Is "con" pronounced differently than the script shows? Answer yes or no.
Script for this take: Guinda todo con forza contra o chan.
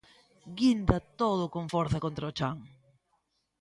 no